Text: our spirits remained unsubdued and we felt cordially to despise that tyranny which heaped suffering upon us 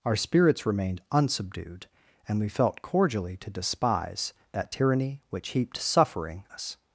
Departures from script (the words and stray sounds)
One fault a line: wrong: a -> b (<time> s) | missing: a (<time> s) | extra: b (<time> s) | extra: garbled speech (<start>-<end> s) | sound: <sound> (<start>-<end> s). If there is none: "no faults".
missing: upon (6.4 s)